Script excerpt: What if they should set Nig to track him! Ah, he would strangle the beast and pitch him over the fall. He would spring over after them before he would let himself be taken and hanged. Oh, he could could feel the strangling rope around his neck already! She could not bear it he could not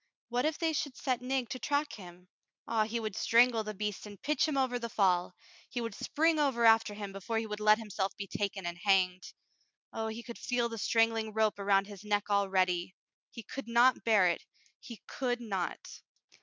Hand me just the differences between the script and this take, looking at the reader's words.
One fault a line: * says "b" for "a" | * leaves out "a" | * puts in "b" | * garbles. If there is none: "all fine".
* says "him" for "them"
* leaves out "could"
* says "He" for "She"